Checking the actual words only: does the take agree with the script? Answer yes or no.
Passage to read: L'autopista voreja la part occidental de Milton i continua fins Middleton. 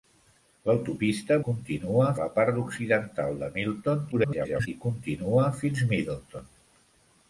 no